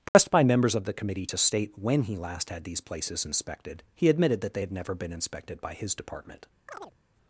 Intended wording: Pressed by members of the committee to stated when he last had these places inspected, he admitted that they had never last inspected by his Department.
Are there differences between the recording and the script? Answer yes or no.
yes